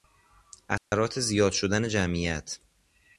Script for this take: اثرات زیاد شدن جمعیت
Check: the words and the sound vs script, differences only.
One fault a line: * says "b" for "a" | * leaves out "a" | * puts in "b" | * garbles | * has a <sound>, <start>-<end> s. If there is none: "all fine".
* has a dropout, 0.8-0.9 s